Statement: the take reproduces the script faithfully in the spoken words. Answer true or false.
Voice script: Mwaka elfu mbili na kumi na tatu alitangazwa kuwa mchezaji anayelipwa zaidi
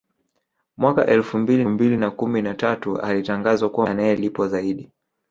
false